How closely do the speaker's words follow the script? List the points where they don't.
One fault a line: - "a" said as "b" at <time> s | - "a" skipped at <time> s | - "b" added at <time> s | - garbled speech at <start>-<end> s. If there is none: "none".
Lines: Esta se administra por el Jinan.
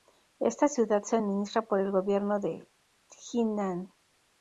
- "ciudad" added at 0.7 s
- "gobierno de" added at 1.9 s